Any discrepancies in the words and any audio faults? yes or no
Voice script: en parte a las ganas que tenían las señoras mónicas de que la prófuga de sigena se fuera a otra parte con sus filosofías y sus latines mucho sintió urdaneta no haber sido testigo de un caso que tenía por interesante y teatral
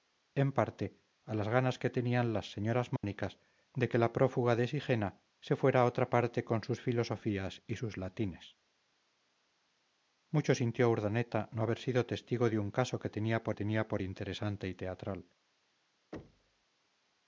yes